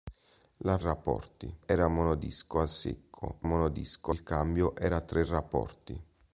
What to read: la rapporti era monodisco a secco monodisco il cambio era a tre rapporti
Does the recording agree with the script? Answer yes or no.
yes